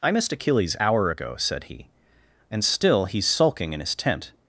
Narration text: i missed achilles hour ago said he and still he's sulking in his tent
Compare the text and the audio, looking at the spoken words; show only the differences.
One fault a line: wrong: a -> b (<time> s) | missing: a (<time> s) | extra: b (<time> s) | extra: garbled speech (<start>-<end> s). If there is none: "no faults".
no faults